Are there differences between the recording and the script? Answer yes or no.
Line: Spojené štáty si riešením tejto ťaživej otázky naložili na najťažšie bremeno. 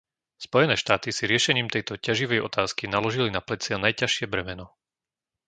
yes